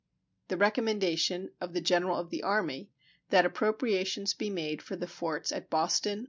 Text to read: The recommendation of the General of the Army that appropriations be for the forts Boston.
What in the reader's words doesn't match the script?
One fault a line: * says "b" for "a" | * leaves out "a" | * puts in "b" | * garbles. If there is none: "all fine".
* puts in "made"
* puts in "at"